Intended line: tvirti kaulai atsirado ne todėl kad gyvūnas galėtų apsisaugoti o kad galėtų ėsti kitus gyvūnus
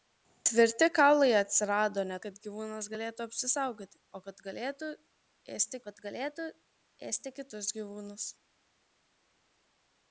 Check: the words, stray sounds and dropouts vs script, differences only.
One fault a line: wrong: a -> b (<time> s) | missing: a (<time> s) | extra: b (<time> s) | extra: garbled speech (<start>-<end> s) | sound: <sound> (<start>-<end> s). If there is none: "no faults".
missing: todėl (2.2 s)
extra: kad galėtų ėsti (5.9 s)